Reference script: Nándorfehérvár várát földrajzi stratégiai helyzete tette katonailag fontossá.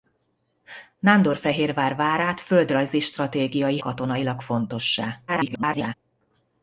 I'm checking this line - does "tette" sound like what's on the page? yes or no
no